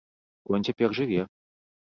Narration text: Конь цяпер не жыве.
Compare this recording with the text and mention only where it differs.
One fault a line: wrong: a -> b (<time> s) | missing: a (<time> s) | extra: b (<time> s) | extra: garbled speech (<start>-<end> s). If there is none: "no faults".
missing: не (0.9 s)